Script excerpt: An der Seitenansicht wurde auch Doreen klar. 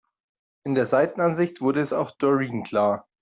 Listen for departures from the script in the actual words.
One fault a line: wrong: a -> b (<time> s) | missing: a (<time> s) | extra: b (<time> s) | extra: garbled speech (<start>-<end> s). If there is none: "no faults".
wrong: An -> In (0.6 s)
extra: es (1.8 s)